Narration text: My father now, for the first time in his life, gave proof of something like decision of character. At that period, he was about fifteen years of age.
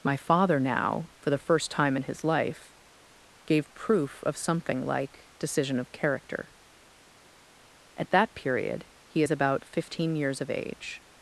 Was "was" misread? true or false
true